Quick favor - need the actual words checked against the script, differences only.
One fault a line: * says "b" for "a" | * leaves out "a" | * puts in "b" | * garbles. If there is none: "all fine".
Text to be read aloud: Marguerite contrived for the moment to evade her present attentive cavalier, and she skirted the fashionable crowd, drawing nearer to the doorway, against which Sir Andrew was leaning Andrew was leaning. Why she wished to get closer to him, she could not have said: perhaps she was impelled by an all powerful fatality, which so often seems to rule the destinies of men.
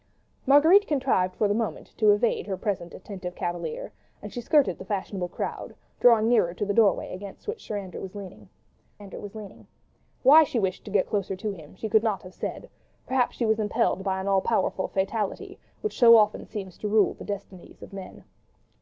all fine